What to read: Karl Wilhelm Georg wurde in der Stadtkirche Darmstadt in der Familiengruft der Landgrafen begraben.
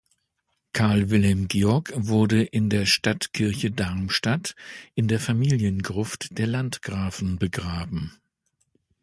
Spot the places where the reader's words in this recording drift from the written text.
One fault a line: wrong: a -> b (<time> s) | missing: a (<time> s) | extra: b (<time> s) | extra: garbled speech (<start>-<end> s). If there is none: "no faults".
no faults